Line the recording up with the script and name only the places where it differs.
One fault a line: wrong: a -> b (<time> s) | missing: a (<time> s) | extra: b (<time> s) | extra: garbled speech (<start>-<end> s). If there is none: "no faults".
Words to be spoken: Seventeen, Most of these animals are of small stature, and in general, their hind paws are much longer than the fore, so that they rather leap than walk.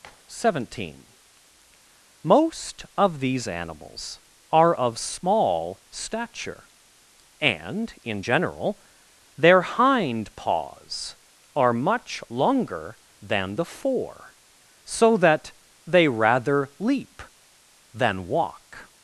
no faults